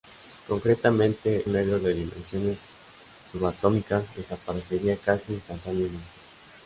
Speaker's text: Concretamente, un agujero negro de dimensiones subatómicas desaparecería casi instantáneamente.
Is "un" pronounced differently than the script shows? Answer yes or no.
yes